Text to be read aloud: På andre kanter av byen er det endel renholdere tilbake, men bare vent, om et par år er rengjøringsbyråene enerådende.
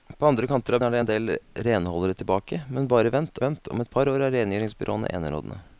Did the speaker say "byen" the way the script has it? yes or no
no